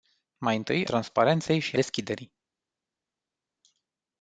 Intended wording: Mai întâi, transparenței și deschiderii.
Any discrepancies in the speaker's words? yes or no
no